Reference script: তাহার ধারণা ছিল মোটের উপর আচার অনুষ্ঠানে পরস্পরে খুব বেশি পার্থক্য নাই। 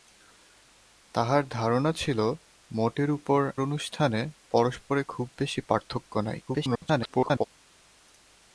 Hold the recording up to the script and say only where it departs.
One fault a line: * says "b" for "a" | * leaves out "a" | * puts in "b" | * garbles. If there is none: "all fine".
* leaves out "আচার"
* garbles